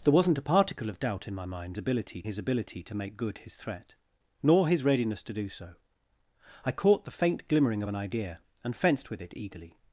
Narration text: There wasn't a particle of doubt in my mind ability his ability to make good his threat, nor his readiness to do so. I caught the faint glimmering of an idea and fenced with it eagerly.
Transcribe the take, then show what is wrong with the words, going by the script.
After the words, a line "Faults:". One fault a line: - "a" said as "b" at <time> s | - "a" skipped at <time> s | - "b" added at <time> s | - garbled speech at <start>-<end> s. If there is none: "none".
There wasn't a particle of doubt in my mind ability his ability to make good his threat, nor his readiness to do so. I caught the faint glimmering of an idea and fenced with it eagerly.
Faults:
none